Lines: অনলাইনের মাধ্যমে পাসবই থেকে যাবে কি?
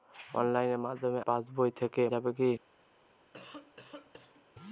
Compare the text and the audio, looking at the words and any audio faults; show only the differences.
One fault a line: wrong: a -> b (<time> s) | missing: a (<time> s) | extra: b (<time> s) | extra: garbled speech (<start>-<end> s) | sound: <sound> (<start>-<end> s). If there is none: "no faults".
sound: cough (3.3-4.5 s)